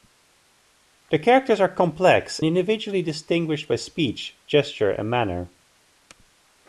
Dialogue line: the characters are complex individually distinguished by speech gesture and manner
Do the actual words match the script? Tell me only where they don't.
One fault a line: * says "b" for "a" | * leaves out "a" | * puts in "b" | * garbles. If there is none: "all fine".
all fine